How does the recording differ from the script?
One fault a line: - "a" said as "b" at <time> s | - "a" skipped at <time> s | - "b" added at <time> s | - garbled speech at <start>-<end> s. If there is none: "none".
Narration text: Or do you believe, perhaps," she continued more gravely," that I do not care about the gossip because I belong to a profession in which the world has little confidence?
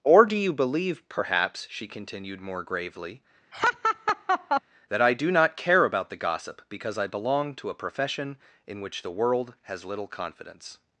none